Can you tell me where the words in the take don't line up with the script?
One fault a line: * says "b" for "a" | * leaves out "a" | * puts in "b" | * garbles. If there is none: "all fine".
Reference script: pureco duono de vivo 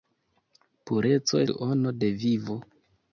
all fine